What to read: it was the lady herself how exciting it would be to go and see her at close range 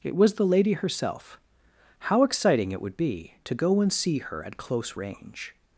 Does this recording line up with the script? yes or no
yes